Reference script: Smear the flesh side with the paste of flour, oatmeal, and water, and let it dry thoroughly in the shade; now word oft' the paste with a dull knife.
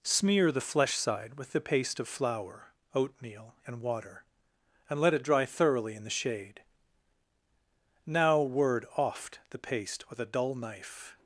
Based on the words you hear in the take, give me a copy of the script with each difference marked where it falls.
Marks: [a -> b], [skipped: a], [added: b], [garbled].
Smear the flesh side with the paste of flour, oatmeal, and water, and let it dry thoroughly in the shade; now word oft' the paste with a dull knife.